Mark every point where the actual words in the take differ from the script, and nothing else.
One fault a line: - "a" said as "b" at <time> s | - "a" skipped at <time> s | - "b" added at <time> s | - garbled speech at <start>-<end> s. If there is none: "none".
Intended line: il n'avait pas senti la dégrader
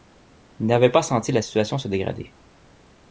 - "situation se" added at 1.4 s